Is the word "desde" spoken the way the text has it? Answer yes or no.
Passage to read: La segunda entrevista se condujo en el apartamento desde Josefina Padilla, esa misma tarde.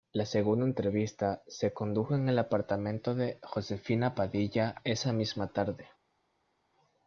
no